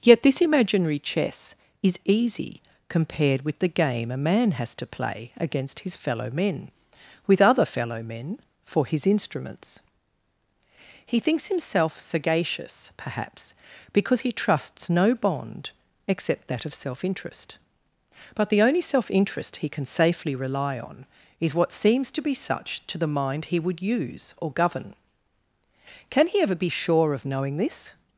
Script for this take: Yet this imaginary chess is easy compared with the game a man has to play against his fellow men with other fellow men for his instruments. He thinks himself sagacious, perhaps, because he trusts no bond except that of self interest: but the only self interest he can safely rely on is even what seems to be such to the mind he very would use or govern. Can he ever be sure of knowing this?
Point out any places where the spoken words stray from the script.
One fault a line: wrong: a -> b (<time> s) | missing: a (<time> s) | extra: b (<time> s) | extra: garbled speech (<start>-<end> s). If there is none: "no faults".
missing: even (21.5 s)
missing: very (23.6 s)